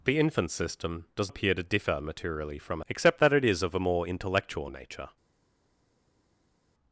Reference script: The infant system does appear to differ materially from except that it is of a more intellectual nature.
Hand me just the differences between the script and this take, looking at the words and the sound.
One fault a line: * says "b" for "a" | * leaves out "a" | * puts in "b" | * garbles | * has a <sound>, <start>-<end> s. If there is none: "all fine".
all fine